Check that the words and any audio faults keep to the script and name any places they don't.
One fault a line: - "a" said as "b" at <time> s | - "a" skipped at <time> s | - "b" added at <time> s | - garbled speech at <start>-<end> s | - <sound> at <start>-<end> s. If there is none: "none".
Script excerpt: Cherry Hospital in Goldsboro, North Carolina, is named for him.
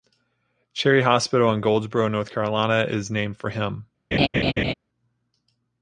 - laugh at 4.1-4.7 s